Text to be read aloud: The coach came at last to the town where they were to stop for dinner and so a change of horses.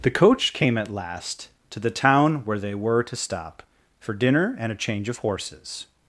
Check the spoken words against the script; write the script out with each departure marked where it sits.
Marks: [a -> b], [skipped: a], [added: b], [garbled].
The coach came at last to the town where they were to stop for dinner and [skipped: so] a change of horses.